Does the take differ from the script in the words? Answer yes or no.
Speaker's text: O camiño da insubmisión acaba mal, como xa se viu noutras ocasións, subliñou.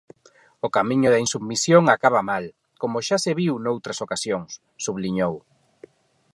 no